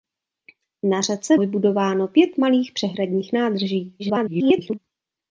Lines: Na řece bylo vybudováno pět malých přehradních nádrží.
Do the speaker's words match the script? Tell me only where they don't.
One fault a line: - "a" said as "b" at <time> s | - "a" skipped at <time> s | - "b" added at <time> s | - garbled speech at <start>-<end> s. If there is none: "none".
- "bylo" skipped at 1.4 s
- garbled speech at 4.0-4.8 s